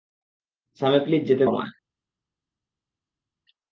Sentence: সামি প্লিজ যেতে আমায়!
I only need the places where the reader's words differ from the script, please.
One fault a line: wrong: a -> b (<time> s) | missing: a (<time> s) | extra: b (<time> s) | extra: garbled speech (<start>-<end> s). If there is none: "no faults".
no faults